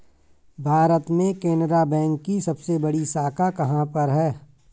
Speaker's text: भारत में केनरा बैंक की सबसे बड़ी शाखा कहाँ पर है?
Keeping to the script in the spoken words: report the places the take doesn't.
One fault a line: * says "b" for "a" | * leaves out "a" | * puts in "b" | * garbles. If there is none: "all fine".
all fine